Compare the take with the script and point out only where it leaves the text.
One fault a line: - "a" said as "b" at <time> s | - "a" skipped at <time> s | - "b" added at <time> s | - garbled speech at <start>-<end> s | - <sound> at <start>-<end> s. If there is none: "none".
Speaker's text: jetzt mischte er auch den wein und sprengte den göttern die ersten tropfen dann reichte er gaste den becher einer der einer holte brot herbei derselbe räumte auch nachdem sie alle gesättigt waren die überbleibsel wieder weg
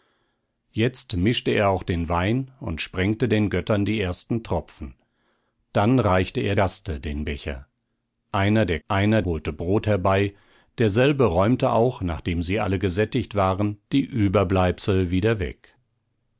none